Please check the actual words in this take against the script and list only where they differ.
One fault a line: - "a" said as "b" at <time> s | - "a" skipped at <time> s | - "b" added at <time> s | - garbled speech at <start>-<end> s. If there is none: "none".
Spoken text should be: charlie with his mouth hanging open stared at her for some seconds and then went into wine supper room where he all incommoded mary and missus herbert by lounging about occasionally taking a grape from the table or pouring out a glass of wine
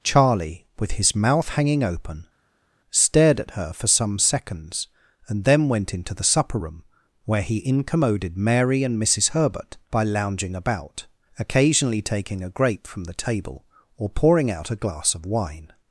- "wine" said as "the" at 6.1 s
- "all" skipped at 7.7 s